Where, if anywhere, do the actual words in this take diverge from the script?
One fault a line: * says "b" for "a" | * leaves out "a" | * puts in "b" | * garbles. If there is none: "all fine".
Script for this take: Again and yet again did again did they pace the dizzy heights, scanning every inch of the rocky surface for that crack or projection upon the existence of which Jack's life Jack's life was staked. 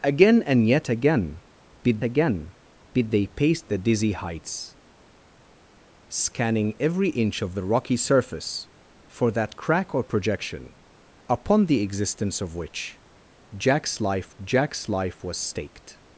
all fine